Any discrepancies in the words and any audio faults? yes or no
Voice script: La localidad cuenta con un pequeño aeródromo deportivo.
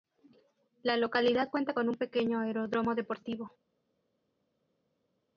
no